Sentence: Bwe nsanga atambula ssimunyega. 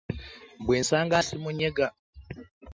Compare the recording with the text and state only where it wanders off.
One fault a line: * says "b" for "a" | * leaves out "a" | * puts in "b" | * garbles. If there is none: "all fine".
* leaves out "atambula"